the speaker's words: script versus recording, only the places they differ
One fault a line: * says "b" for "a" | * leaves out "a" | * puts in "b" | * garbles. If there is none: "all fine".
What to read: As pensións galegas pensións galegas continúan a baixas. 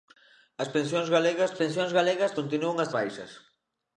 all fine